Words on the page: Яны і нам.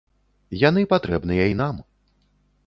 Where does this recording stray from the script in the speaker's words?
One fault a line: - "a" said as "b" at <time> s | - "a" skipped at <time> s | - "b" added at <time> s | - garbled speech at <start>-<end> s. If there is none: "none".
- "патрэбныя" added at 0.9 s